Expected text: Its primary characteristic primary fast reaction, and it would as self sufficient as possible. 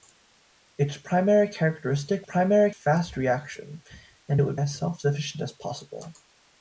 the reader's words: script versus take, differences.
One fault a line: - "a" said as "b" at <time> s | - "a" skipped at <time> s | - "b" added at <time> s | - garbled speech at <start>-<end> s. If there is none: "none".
none